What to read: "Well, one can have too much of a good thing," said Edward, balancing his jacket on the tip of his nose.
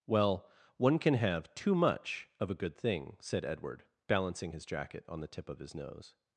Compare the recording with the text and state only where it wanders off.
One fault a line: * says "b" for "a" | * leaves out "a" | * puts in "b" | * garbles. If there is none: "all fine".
all fine